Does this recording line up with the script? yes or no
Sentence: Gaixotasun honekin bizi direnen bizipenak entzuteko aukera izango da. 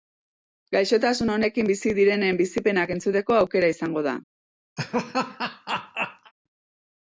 yes